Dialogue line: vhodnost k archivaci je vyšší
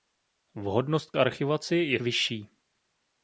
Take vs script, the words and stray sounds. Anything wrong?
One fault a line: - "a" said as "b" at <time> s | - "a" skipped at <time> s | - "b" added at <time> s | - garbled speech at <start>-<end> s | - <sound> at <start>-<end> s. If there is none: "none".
none